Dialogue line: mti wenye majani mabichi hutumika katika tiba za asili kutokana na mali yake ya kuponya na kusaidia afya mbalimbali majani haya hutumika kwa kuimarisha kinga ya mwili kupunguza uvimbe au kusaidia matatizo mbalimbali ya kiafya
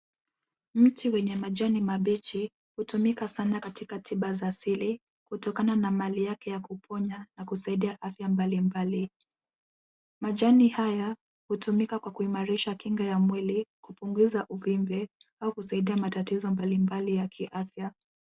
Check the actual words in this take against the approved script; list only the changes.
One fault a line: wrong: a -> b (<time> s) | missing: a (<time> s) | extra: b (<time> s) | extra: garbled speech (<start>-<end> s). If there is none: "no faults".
extra: sana (3.3 s)